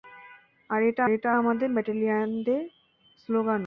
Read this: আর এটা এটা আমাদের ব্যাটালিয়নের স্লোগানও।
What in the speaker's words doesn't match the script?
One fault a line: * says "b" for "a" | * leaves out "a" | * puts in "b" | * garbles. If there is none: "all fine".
all fine